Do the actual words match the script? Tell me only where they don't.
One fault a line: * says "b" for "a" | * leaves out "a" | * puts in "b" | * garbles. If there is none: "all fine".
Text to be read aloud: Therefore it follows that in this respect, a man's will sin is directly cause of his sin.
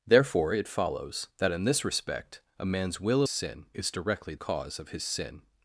all fine